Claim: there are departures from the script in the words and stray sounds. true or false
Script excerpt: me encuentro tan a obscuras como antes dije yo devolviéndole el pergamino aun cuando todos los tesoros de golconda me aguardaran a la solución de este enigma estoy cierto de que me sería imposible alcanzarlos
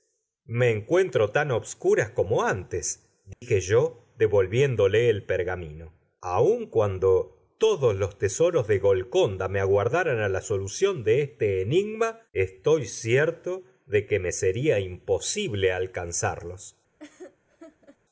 true